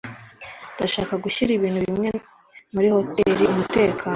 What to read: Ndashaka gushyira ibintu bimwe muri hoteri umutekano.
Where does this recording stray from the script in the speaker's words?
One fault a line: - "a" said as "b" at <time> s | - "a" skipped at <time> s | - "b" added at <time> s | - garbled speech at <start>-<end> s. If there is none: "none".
none